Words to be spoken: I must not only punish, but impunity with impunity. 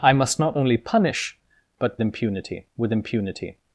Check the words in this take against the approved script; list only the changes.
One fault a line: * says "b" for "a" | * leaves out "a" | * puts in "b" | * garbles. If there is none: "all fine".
all fine